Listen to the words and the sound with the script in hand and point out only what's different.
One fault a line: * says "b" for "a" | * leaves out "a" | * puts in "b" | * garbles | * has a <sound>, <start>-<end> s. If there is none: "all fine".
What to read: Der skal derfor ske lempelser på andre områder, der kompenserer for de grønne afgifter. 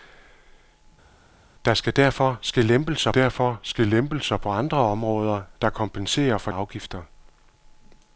* puts in "derfor ske lempelser"
* leaves out "de grønne"